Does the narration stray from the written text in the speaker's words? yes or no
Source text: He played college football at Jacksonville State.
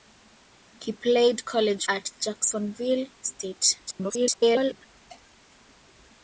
yes